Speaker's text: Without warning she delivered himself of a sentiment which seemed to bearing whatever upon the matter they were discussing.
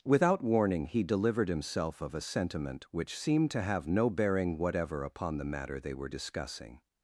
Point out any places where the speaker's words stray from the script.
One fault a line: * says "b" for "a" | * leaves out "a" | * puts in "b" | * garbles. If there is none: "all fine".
* says "he" for "she"
* puts in "have no"